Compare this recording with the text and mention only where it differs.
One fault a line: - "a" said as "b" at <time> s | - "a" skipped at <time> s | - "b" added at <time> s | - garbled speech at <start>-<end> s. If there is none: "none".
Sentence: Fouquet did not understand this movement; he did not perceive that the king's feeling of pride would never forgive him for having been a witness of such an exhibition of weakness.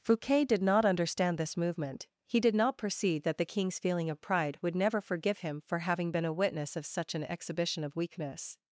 none